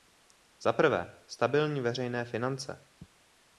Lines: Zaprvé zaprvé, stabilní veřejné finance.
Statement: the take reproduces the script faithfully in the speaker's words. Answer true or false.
false